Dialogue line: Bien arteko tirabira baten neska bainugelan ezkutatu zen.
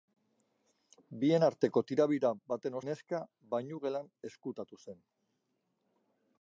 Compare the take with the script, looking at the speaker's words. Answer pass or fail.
pass